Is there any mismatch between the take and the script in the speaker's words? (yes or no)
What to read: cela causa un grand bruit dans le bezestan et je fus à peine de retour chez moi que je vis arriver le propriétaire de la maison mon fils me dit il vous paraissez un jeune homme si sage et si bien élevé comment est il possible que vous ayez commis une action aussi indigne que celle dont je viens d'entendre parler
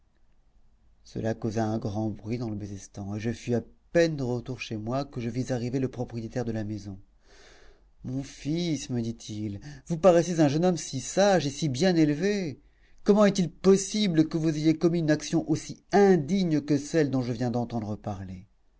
no